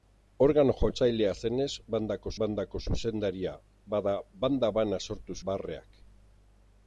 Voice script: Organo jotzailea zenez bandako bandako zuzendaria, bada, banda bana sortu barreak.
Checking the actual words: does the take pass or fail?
pass